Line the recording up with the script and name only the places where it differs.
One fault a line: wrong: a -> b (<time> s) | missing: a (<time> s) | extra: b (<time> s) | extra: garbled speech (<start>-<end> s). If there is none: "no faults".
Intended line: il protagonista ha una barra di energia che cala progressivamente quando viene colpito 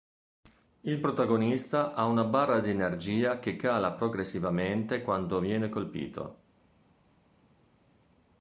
no faults